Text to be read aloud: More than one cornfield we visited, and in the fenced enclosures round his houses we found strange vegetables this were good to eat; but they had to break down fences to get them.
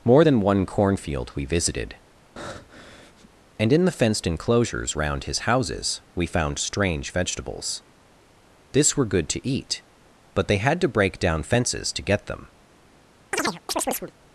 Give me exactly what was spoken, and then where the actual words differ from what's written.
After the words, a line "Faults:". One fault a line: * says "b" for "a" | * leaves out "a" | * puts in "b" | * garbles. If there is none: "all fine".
More than one cornfield we visited, and in the fenced enclosures round his houses we found strange vegetables this were good to eat; but they had to break down fences to get them.
Faults:
all fine